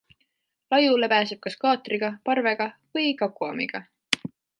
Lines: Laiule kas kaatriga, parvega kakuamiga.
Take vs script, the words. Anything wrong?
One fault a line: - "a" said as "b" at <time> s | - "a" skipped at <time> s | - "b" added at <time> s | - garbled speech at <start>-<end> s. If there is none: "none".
- "pääseb" added at 1.1 s
- "või" added at 3.0 s